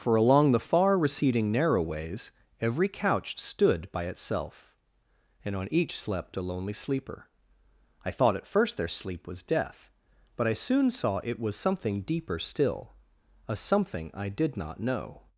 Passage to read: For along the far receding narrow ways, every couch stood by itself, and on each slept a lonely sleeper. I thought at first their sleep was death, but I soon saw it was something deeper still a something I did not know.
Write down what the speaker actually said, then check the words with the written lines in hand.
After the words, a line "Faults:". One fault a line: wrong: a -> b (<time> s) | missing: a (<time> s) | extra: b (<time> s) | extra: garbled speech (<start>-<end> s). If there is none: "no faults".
For along the far receding narrow ways, every couch stood by itself, and on each slept a lonely sleeper. I thought at first their sleep was death, but I soon saw it was something deeper still a something I did not know.
Faults:
no faults